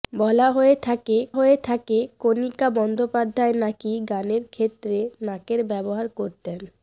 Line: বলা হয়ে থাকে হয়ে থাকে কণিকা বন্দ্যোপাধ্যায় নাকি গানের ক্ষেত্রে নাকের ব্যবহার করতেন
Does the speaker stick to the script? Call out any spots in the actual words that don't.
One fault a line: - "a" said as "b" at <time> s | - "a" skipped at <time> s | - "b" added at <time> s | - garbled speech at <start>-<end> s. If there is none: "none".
none